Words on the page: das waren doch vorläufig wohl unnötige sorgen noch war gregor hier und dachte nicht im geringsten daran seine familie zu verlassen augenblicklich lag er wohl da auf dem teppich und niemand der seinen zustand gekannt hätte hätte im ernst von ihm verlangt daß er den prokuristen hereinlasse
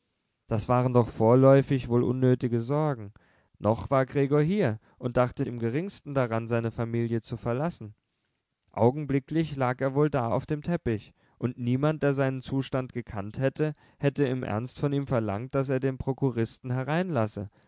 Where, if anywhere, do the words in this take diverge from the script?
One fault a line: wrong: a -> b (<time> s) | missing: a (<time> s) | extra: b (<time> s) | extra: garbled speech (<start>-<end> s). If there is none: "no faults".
missing: nicht (5.5 s)